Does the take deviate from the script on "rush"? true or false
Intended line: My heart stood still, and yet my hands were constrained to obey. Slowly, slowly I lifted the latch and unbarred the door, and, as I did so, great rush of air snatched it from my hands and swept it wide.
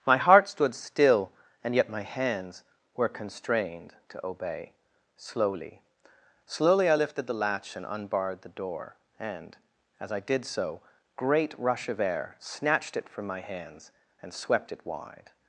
false